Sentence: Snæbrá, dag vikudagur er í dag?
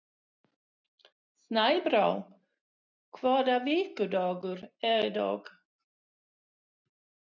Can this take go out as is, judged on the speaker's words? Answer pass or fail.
fail